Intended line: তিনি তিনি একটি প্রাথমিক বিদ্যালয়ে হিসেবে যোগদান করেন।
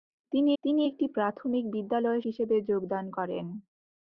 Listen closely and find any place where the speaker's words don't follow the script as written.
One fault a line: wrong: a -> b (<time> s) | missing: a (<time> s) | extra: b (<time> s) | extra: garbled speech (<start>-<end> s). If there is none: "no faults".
no faults